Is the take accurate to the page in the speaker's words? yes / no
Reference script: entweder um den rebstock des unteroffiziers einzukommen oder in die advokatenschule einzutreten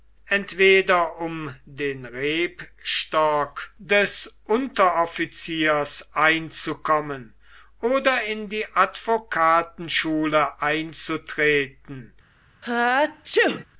yes